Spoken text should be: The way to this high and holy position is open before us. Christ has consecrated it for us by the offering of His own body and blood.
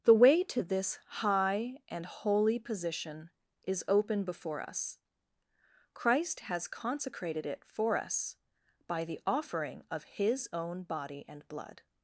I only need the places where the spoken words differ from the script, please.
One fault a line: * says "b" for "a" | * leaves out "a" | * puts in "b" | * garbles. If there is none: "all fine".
all fine